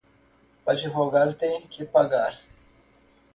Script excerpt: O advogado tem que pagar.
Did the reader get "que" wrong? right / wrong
right